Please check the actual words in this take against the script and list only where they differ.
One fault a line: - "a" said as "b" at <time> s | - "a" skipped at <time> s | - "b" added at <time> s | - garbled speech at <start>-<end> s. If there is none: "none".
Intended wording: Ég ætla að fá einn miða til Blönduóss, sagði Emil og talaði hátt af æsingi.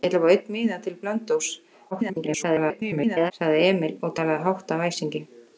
- garbled speech at 1.9-3.3 s